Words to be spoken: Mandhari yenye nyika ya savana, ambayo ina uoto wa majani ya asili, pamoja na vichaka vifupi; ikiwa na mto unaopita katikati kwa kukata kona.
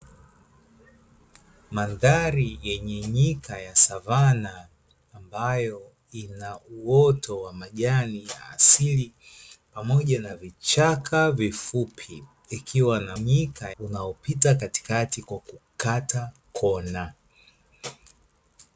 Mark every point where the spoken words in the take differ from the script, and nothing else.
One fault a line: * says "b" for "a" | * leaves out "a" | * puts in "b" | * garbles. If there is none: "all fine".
* says "nyika" for "mto"